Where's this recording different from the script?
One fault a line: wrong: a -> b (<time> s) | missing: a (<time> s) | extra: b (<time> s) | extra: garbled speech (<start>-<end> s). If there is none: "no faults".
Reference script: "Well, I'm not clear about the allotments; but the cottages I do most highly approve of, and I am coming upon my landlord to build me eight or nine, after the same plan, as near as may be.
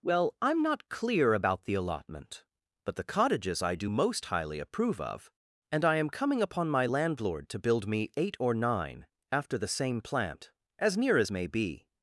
wrong: allotments -> allotment (1.8 s)
wrong: plan -> plant (10.0 s)